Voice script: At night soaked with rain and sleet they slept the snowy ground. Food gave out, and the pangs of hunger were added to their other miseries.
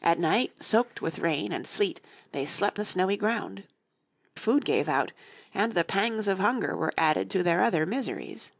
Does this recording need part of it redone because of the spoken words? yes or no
no